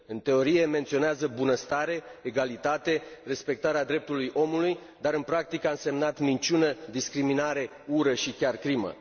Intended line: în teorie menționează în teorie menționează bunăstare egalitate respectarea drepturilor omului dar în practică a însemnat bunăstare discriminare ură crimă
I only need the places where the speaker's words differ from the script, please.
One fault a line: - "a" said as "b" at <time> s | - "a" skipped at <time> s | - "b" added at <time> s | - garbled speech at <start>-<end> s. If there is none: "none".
- "în teorie menționează" skipped at 1.3 s
- "bunăstare" said as "minciună" at 6.2 s
- "și chiar" added at 8.1 s